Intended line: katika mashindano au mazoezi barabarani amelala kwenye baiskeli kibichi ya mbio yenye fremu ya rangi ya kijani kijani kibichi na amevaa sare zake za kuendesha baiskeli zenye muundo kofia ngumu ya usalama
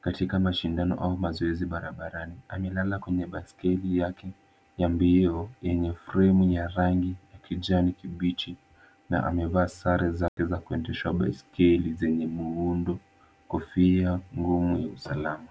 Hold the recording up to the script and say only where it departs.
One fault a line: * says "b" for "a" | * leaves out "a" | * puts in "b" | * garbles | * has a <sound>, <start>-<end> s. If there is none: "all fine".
* says "yake" for "kibichi"
* leaves out "kijani"
* has a dropout, 10.3-10.4 s